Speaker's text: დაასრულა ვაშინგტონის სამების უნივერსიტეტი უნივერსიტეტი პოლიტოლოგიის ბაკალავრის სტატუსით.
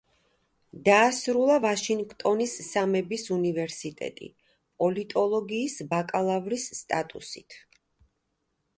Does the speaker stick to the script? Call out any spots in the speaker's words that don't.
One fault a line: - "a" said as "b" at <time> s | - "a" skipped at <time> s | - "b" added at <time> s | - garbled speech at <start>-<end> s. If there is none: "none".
- "უნივერსიტეტი" skipped at 4.3 s